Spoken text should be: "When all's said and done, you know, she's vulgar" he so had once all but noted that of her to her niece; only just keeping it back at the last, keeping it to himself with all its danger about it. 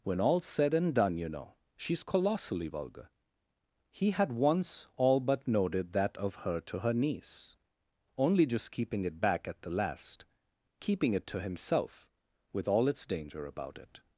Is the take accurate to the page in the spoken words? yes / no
no